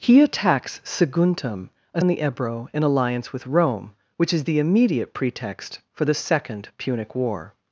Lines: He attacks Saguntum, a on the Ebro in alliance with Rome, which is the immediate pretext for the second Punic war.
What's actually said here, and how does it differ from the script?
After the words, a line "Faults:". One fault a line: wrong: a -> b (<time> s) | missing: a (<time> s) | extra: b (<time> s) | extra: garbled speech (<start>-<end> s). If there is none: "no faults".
He attacks Saguntum, a on the Ebro in alliance with Rome, which is the immediate pretext for the second Punic war.
Faults:
no faults